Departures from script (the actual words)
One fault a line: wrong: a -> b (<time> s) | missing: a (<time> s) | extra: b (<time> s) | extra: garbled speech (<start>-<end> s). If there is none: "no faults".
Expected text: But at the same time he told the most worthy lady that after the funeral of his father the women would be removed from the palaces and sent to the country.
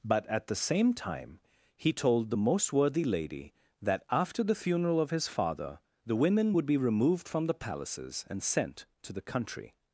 no faults